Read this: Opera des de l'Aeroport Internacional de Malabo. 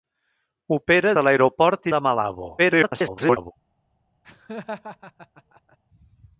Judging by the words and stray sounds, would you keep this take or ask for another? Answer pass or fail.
fail